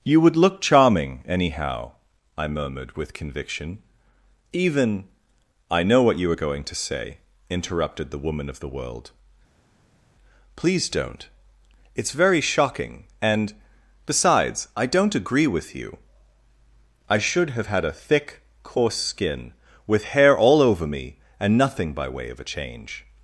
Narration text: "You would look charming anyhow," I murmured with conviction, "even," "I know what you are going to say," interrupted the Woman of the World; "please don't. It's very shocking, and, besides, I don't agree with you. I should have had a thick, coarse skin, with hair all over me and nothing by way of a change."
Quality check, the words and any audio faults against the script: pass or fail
pass